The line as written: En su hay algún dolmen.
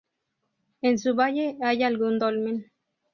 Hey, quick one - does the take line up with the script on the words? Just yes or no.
no